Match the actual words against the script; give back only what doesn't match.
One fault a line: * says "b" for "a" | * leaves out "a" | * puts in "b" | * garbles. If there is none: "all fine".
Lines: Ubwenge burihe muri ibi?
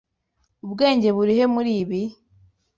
all fine